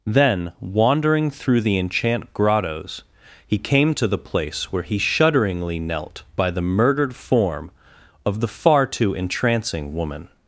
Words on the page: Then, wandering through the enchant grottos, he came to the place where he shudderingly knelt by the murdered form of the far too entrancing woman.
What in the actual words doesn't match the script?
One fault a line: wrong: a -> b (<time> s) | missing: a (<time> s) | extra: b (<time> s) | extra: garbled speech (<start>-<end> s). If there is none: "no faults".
no faults